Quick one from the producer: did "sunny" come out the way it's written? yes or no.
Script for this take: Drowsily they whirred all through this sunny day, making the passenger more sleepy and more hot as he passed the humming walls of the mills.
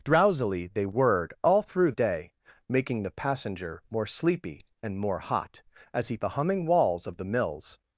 no